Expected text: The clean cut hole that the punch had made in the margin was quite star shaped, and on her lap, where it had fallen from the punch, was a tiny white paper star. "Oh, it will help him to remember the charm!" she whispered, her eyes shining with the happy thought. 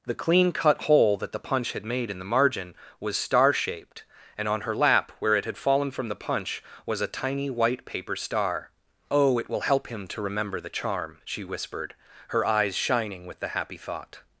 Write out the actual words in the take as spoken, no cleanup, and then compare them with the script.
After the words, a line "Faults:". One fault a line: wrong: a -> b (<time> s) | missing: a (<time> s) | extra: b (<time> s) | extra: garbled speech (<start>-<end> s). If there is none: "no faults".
The clean cut hole that the punch had made in the margin was star shaped, and on her lap, where it had fallen from the punch, was a tiny white paper star. "Oh, it will help him to remember the charm!" she whispered, her eyes shining with the happy thought.
Faults:
missing: quite (3.1 s)